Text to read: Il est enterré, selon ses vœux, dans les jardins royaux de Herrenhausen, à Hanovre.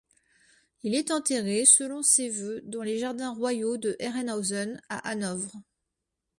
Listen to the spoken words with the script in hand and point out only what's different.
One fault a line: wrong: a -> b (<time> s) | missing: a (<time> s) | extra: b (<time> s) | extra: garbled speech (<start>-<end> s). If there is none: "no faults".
no faults